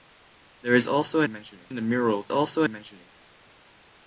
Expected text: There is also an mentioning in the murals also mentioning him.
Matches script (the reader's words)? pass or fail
pass